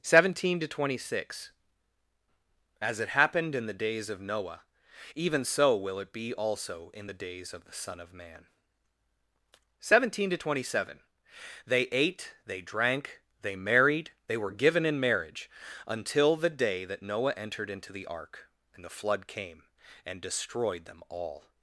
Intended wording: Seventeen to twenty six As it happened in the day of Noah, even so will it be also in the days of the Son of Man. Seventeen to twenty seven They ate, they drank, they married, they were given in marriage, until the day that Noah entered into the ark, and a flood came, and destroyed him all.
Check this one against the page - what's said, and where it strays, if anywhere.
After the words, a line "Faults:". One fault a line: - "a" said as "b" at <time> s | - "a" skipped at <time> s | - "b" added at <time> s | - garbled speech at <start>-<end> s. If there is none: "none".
Seventeen to twenty six As it happened in the days of Noah, even so will it be also in the days of the Son of Man. Seventeen to twenty seven They ate, they drank, they married, they were given in marriage, until the day that Noah entered into the ark, and the flood came, and destroyed them all.
Faults:
- "day" said as "days" at 3.7 s
- "a" said as "the" at 18.8 s
- "him" said as "them" at 20.8 s